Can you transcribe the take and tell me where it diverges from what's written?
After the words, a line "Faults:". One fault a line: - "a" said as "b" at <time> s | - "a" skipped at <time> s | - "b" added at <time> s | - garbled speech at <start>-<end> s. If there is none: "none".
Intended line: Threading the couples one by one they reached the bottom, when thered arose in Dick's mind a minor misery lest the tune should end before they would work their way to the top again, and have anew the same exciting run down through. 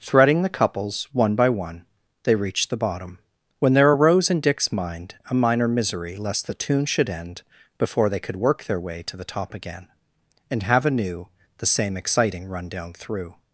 Threading the couples one by one they reached the bottom, when there arose in Dick's mind a minor misery lest the tune should end before they could work their way to the top again, and have anew the same exciting run down through.
Faults:
- "thered" said as "there" at 3.7 s
- "would" said as "could" at 8.2 s